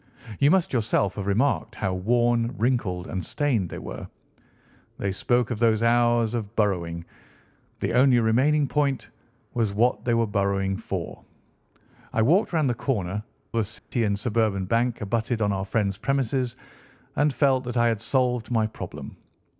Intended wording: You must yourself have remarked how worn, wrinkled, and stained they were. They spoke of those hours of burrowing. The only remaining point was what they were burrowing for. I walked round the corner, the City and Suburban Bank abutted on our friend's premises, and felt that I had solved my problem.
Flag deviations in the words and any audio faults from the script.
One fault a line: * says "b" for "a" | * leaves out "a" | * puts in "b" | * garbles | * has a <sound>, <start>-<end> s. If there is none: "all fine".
* has a dropout, 13.8-13.9 s